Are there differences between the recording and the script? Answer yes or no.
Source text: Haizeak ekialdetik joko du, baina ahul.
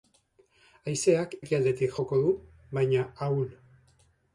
no